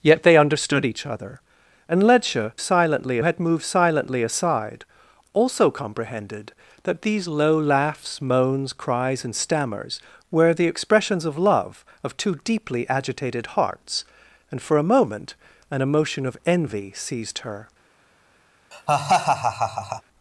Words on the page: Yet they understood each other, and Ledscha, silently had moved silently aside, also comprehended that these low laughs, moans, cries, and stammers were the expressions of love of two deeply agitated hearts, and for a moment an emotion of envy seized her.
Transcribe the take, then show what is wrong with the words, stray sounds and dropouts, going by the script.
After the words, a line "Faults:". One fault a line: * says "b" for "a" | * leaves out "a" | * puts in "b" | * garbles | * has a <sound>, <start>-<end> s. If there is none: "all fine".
Yet they understood each other, and Ledscha, silently had moved silently aside, also comprehended that these low laughs, moans, cries, and stammers were the expressions of love of two deeply agitated hearts, and for a moment an emotion of envy seized her.
Faults:
* has a laugh, 18.7-20.0 s